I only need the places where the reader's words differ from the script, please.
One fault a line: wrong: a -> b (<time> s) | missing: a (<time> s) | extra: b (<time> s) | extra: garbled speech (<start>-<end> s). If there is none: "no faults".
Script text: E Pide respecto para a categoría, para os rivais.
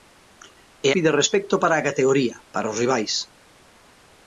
no faults